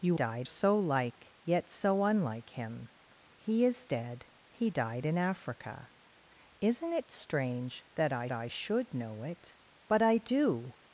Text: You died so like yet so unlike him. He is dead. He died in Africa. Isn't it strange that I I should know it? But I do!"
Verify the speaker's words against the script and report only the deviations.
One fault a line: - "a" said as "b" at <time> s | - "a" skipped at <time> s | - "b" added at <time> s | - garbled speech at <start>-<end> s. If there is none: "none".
none